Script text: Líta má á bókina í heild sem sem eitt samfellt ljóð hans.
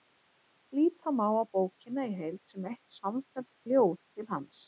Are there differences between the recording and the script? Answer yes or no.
yes